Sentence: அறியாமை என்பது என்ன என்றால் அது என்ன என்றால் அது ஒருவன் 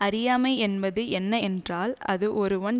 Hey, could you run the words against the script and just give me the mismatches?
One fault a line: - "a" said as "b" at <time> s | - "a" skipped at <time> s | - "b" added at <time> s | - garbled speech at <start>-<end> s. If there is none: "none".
- "என்ன என்றால் அது" skipped at 2.3 s